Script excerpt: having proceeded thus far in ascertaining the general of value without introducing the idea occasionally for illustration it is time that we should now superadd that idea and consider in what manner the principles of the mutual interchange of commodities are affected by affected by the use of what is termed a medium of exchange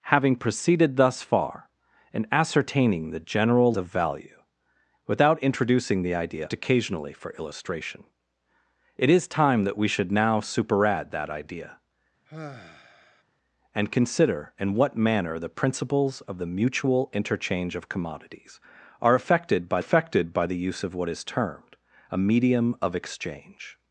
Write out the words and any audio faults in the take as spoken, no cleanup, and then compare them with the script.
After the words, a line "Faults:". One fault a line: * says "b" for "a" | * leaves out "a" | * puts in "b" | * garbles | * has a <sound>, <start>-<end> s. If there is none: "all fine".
having proceeded thus far in ascertaining the general of value without introducing the idea occasionally for illustration it is time that we should now superadd that idea and consider in what manner the principles of the mutual interchange of commodities are affected by affected by the use of what is termed a medium of exchange
Faults:
* has a sigh, 12.3-13.2 s